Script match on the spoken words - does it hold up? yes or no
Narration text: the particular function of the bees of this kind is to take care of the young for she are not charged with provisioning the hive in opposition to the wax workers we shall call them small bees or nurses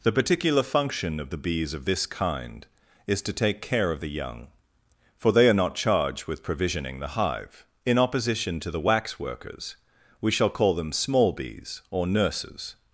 no